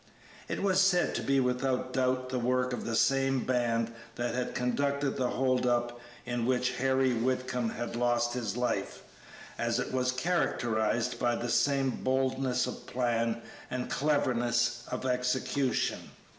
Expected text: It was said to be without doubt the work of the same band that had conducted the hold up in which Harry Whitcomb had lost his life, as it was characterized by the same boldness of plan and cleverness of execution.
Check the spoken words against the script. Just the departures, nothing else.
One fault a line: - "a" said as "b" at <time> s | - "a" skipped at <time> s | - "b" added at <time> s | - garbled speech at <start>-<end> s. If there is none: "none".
none